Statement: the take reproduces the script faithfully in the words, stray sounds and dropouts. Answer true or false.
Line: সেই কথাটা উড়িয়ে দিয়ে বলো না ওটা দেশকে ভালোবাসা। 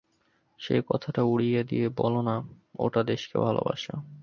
true